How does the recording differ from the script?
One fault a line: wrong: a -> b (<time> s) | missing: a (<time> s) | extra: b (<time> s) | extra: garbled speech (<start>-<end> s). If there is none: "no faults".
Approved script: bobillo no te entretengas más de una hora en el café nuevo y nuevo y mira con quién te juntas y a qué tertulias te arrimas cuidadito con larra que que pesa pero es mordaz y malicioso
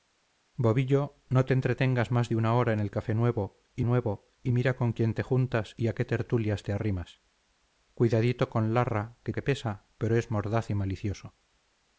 no faults